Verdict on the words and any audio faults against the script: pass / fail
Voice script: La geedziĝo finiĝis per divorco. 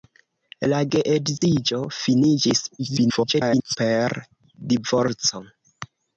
fail